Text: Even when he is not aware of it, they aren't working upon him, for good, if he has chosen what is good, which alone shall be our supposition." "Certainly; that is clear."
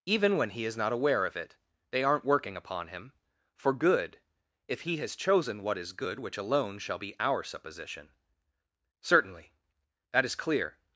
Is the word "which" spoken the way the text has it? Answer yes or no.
yes